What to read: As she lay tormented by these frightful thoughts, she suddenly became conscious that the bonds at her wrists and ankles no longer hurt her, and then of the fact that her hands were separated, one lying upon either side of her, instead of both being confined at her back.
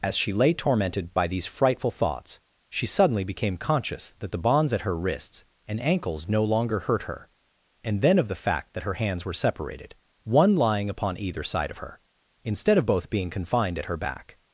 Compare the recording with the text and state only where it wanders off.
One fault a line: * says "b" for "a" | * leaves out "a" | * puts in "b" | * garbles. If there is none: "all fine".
all fine